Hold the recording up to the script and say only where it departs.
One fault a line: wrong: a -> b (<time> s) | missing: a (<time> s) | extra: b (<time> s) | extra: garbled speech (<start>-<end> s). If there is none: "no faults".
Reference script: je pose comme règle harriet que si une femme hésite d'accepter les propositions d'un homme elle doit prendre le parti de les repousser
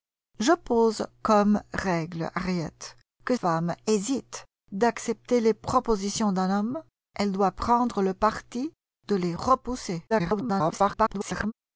missing: si une (3.4 s)
extra: garbled speech (10.1-11.5 s)